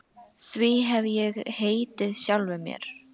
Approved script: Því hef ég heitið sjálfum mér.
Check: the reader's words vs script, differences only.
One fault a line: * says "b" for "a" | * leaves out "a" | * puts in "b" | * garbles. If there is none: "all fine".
all fine